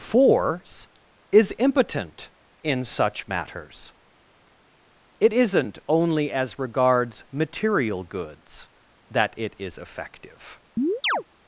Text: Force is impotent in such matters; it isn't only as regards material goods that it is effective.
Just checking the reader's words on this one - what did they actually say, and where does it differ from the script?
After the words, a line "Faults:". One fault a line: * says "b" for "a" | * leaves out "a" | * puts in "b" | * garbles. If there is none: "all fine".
Force is impotent in such matters; it isn't only as regards material goods that it is effective.
Faults:
all fine